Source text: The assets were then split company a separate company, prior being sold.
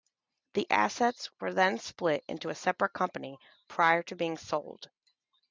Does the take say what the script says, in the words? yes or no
no